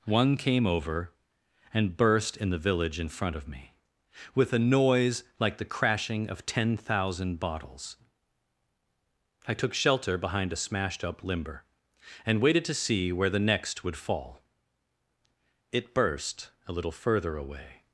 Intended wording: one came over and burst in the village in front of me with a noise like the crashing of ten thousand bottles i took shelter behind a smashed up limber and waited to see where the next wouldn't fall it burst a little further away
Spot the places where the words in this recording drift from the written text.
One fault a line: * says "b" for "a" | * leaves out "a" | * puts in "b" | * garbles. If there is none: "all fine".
* says "would" for "wouldn't"